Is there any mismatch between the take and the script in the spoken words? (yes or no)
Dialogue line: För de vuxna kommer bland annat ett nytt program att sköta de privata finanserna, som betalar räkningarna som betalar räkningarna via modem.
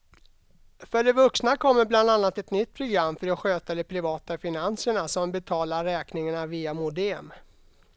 yes